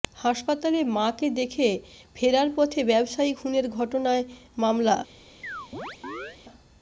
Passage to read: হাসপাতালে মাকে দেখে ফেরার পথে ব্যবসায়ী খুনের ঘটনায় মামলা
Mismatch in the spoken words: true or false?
false